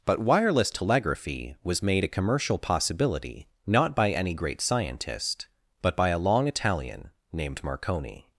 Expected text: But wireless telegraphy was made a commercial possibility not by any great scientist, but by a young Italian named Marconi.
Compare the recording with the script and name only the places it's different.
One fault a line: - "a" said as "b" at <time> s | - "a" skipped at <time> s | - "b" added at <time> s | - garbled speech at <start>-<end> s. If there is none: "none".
- "young" said as "long" at 6.2 s